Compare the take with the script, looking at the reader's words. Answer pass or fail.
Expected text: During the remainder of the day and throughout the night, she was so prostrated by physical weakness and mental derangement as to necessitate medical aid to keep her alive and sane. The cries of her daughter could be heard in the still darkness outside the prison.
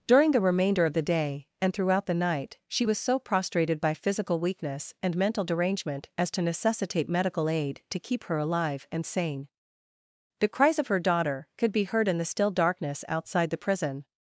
pass